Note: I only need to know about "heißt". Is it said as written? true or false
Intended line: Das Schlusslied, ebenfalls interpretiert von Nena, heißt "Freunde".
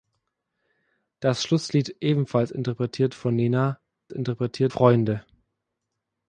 false